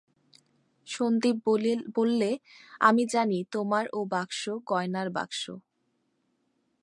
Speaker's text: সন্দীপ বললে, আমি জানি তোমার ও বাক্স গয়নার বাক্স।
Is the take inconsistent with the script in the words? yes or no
no